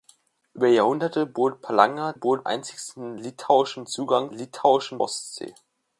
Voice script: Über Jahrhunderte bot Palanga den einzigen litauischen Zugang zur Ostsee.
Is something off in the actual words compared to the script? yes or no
yes